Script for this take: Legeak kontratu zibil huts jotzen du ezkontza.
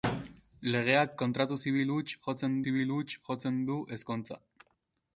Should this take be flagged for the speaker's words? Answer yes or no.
yes